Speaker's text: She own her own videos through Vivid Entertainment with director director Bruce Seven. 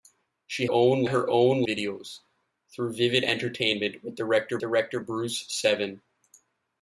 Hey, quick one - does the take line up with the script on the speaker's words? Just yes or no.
yes